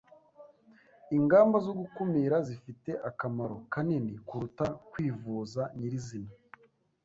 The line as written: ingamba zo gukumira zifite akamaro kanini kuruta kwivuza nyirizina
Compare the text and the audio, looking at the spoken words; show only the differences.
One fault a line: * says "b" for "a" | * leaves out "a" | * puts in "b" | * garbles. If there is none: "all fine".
all fine